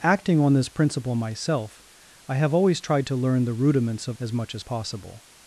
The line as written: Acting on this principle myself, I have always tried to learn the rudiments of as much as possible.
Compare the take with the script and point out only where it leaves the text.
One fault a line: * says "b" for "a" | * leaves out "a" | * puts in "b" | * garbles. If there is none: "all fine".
all fine